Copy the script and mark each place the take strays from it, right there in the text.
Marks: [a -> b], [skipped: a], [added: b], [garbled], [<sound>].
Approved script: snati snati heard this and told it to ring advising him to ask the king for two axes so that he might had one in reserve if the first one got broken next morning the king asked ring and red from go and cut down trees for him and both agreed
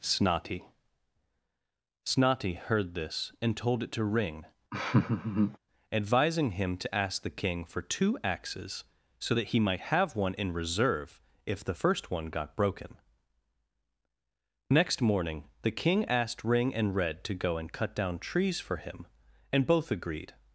snati snati heard this and told it to ring [laugh] advising him to ask the king for two axes so that he might [had -> have] one in reserve if the first one got broken next morning the king asked ring and red [from -> to] go and cut down trees for him and both agreed